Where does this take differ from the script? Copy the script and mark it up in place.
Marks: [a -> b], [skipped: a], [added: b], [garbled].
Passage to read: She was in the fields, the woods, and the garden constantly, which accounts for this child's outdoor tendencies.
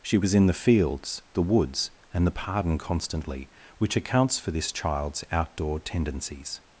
She was in the fields, the woods, and the [garden -> pardon] constantly, which accounts for this child's outdoor tendencies.